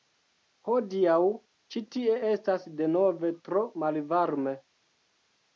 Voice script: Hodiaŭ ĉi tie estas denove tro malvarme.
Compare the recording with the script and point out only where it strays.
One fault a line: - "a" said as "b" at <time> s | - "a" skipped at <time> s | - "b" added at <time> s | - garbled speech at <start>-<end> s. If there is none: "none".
none